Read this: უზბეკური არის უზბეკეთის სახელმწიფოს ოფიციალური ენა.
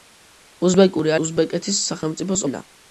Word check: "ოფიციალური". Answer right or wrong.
wrong